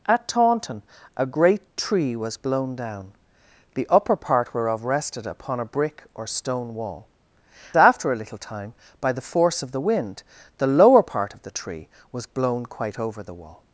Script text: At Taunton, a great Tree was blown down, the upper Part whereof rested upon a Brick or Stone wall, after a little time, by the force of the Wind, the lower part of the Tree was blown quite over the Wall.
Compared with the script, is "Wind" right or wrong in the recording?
right